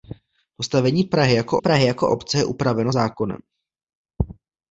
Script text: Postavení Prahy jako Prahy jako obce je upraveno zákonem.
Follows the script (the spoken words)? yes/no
yes